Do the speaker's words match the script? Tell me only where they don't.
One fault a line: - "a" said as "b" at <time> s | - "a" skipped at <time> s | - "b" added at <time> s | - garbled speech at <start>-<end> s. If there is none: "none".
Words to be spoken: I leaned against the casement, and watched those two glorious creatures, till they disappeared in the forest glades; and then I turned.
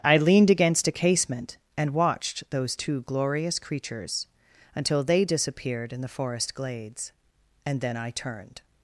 - "the" said as "a" at 0.9 s
- "till" said as "until" at 4.8 s